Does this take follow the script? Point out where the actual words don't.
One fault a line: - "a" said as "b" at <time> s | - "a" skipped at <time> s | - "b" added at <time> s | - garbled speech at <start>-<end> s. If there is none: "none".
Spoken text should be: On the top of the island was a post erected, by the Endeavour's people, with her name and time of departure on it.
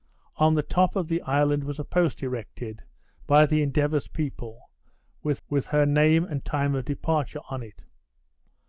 - "with" added at 5.5 s